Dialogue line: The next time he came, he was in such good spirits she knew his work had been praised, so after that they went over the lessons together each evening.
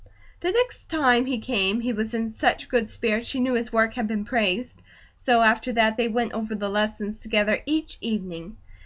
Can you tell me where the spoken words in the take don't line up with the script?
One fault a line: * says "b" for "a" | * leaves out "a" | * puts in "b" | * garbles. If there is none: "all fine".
all fine